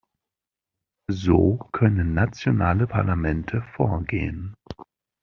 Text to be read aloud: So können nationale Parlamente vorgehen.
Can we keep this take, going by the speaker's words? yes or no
yes